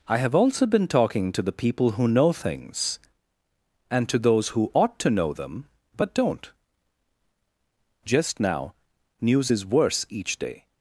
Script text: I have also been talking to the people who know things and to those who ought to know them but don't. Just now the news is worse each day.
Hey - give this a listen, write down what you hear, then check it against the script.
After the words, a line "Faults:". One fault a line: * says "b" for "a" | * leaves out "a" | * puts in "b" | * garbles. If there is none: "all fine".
I have also been talking to the people who know things and to those who ought to know them but don't. Just now news is worse each day.
Faults:
* leaves out "the"